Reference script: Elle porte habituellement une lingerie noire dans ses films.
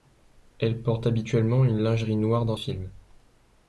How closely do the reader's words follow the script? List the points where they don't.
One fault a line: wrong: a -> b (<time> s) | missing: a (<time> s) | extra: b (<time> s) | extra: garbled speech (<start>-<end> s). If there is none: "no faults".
missing: ses (2.6 s)